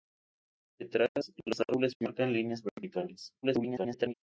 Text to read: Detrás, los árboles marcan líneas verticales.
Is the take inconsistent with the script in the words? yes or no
yes